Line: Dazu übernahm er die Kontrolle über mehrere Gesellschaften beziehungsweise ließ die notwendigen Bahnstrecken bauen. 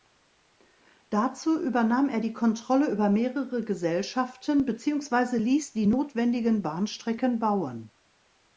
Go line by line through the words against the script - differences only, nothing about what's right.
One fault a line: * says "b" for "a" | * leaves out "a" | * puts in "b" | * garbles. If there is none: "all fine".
all fine